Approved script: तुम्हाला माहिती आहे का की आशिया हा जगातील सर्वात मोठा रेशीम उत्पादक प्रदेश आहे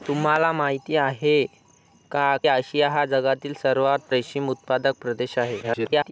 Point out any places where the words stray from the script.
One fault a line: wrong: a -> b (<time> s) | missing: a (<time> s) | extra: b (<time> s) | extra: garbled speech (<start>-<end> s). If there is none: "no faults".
missing: की (2.4 s)
missing: मोठा (4.1 s)
extra: garbled speech (5.6-6.1 s)